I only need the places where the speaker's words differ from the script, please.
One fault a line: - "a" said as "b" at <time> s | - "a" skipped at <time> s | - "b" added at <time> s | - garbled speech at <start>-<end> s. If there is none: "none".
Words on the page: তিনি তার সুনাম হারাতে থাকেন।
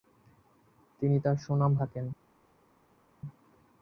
- "হারাতে" skipped at 1.7 s